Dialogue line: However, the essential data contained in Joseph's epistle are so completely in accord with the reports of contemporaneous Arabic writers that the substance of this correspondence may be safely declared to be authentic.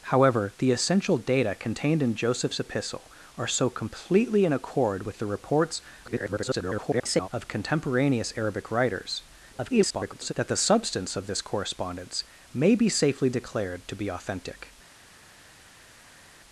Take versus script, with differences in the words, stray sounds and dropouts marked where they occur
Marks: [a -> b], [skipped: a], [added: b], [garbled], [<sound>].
However, the essential data contained in Joseph's epistle are so completely in accord with the reports [garbled] of contemporaneous Arabic writers [garbled] that the substance of this correspondence may be safely declared to be authentic.